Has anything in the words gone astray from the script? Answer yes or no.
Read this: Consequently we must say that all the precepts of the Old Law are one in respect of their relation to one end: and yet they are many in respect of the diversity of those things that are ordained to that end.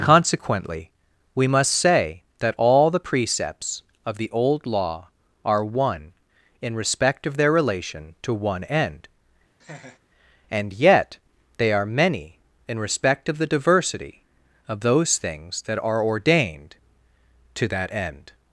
no